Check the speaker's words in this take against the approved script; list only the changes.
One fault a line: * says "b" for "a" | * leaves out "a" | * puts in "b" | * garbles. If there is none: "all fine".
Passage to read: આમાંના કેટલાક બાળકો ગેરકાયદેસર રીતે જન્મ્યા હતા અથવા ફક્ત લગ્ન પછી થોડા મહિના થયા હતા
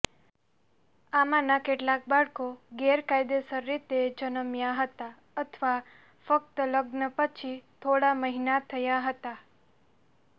all fine